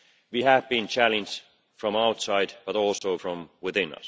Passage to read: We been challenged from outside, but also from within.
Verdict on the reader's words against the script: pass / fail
fail